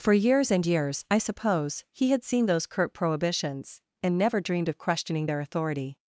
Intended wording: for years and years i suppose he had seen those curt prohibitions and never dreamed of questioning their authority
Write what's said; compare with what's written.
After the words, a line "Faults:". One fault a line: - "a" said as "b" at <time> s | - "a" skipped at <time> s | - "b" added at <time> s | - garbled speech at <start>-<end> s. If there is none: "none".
for years and years i suppose he had seen those curt prohibitions and never dreamed of questioning their authority
Faults:
none